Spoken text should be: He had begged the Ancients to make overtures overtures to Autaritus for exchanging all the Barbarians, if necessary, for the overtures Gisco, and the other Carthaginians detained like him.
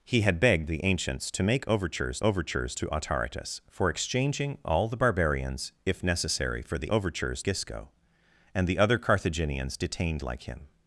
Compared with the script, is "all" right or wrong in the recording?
right